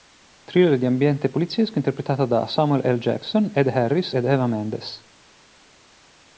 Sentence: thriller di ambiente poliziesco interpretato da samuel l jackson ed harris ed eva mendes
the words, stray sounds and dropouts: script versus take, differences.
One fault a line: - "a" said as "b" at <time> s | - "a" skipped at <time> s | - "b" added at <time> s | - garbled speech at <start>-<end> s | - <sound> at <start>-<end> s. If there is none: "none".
none